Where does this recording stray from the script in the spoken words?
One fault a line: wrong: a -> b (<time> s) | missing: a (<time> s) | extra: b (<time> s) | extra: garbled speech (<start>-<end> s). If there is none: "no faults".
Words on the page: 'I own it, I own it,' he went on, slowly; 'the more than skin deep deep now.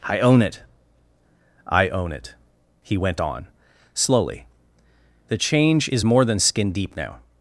extra: change is (5.4 s)
missing: deep (6.9 s)